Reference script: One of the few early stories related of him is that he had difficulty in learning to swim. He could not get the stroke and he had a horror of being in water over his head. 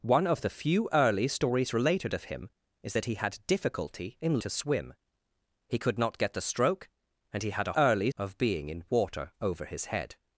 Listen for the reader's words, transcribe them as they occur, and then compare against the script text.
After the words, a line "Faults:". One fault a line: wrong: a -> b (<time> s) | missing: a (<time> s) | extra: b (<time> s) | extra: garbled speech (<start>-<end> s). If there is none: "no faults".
One of the few early stories related of him is that he had difficulty in to swim. He could not get the stroke and he had a early of being in water over his head.
Faults:
missing: learning (4.4 s)
wrong: horror -> early (7.7 s)